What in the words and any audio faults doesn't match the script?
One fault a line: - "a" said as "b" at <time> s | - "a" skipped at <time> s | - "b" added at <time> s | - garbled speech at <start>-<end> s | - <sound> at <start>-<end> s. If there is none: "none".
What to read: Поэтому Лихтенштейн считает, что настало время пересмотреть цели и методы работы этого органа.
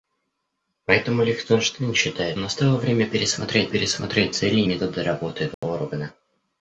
- "что" skipped at 2.4 s
- "пересмотреть" added at 3.7 s
- dropout at 5.5-5.6 s